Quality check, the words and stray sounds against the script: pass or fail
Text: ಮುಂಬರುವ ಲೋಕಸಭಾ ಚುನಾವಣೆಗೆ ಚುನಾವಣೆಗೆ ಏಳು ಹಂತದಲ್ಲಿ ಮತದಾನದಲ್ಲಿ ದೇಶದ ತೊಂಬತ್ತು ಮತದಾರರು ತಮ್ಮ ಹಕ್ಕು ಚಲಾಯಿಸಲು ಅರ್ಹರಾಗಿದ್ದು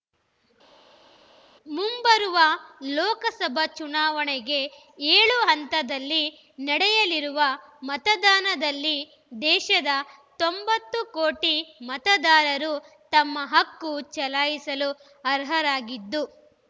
fail